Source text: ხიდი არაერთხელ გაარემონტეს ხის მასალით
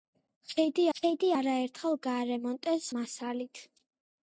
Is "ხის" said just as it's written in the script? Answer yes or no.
no